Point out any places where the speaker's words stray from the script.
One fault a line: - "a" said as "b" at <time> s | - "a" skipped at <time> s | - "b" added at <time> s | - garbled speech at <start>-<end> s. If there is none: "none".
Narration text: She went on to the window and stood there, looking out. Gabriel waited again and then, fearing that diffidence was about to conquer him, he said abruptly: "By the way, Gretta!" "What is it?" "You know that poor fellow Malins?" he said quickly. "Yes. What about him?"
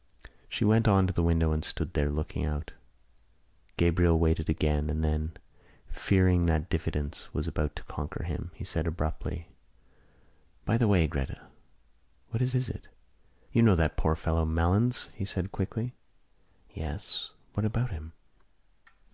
- "is" added at 12.5 s